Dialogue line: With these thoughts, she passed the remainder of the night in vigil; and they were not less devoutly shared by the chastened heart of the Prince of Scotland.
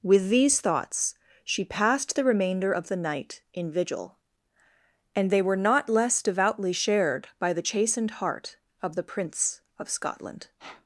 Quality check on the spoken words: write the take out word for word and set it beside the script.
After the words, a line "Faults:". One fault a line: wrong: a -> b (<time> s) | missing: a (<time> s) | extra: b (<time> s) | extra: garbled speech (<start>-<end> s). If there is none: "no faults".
With these thoughts, she passed the remainder of the night in vigil; and they were not less devoutly shared by the chastened heart of the Prince of Scotland.
Faults:
no faults